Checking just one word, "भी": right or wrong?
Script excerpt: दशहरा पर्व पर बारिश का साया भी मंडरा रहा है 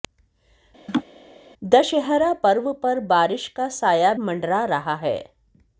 wrong